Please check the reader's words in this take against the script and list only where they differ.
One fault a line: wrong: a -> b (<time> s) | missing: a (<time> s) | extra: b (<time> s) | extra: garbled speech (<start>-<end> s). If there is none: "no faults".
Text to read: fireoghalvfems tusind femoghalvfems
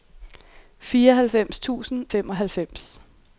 no faults